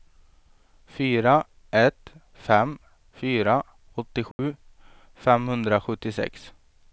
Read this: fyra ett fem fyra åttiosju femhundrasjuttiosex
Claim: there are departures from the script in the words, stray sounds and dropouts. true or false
true